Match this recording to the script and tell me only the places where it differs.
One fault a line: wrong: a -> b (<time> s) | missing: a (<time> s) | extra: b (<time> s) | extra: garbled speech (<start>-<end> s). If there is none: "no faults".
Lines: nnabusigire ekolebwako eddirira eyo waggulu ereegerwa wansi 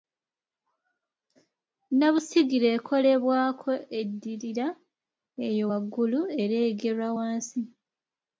no faults